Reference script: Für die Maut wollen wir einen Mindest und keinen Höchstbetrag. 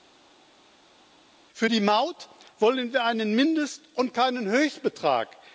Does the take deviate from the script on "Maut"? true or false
false